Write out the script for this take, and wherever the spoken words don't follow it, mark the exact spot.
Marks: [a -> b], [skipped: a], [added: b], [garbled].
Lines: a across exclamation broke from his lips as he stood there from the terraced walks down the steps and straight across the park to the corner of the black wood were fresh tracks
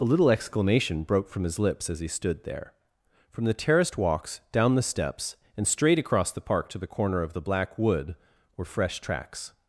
a [across -> little] exclamation broke from his lips as he stood there from the terraced walks down the steps and straight across the park to the corner of the black wood were fresh tracks